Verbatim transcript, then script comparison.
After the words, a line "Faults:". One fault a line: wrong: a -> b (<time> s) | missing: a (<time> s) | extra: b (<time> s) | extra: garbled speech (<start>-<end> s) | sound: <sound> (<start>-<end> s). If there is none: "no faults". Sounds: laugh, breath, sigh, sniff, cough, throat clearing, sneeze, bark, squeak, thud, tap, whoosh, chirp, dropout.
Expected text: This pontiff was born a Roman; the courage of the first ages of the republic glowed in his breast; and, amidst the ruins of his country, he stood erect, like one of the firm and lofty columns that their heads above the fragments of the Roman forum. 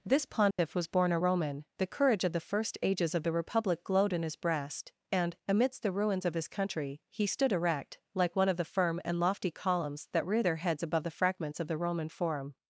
This pontiff was born a Roman; the courage of the first ages of the republic glowed in his breast; and, amidst the ruins of his country, he stood erect, like one of the firm and lofty columns that rear their heads above the fragments of the Roman forum.
Faults:
sound: dropout (0.5-0.6 s)
extra: rear (10.3 s)